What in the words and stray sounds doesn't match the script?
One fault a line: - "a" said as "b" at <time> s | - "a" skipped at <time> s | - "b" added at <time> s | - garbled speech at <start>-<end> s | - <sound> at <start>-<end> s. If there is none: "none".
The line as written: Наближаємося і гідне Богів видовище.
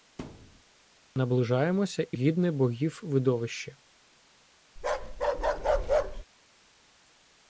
- thud at 0.2-0.6 s
- bark at 4.8-6.2 s